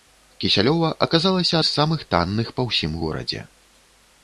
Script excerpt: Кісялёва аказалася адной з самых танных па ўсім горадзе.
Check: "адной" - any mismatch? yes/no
yes